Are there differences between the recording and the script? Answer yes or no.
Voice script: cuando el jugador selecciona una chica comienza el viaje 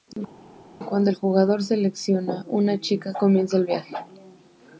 no